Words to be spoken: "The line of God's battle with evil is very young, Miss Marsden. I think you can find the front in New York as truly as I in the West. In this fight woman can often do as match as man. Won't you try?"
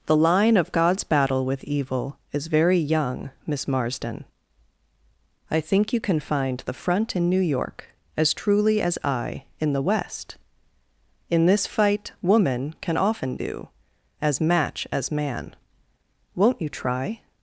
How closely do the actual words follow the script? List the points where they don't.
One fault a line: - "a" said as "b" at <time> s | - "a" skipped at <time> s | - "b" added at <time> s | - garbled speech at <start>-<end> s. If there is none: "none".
none